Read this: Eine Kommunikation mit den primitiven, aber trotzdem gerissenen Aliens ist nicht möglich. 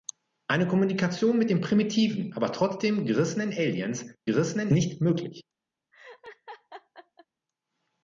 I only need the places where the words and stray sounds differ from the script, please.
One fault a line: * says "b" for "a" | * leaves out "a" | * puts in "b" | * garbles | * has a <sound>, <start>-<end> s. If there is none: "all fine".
* says "gerissenen" for "ist"
* has a laugh, 5.9-7.3 s